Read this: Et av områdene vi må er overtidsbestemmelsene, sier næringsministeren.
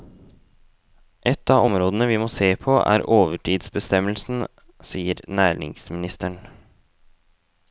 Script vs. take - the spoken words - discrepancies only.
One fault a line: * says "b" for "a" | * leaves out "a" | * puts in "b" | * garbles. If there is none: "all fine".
* puts in "se på"